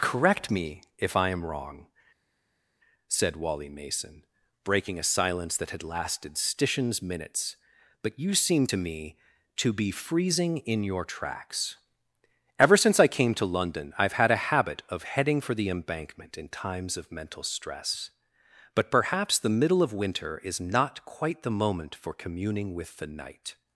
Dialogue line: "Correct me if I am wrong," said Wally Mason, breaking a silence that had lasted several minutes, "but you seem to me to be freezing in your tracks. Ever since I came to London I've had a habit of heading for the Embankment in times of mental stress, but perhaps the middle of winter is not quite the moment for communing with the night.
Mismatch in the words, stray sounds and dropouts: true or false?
true